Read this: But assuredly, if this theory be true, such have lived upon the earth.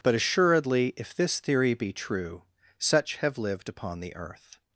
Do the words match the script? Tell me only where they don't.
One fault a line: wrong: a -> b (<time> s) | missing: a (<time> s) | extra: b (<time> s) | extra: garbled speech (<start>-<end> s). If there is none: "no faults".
no faults